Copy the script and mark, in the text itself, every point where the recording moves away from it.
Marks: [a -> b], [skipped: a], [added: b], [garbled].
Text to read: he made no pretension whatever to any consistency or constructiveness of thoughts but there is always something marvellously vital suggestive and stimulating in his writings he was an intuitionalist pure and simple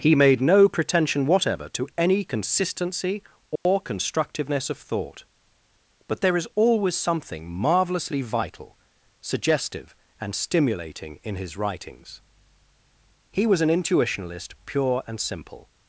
he made no pretension whatever to any consistency or constructiveness of [thoughts -> thought] but there is always something marvellously vital suggestive and stimulating in his writings he was an intuitionalist pure and simple